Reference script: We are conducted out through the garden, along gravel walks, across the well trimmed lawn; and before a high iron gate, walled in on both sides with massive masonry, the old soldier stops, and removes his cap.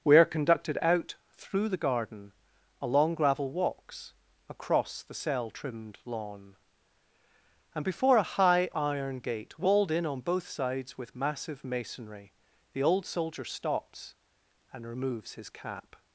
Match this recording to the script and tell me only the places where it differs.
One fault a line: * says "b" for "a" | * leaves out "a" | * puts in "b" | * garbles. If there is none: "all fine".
* says "cell" for "well"